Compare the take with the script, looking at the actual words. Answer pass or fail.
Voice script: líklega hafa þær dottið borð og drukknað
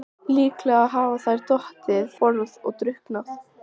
pass